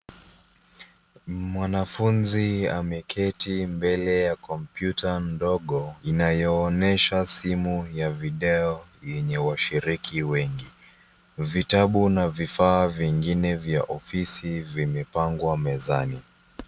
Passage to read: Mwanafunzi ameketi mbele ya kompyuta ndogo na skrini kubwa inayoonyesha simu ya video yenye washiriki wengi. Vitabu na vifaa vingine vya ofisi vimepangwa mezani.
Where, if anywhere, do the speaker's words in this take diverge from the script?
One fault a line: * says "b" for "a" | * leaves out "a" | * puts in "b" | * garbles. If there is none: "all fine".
* leaves out "na skrini kubwa"